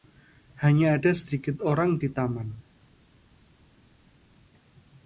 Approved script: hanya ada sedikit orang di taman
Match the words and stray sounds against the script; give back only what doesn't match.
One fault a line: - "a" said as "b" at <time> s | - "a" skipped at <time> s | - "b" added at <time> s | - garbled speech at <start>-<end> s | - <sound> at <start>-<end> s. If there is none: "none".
none